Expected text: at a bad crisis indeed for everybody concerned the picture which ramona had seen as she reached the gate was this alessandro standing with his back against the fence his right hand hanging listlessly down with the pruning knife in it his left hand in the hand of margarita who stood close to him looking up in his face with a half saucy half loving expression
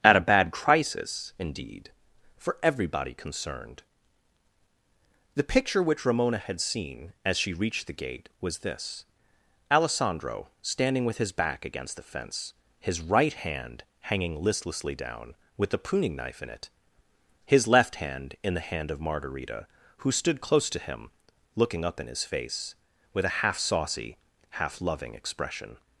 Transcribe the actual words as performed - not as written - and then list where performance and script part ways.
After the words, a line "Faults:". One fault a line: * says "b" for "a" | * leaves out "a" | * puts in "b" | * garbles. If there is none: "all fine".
at a bad crisis indeed for everybody concerned the picture which ramona had seen as she reached the gate was this alessandro standing with his back against the fence his right hand hanging listlessly down with the pruning knife in it his left hand in the hand of margarita who stood close to him looking up in his face with a half saucy half loving expression
Faults:
all fine